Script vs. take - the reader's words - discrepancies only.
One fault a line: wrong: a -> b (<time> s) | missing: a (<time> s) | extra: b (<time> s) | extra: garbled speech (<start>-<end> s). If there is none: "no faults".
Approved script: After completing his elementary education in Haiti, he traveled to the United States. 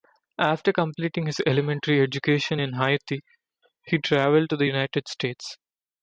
no faults